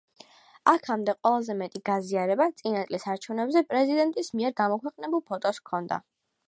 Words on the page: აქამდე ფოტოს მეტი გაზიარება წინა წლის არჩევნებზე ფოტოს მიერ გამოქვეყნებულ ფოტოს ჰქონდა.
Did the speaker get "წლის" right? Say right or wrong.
right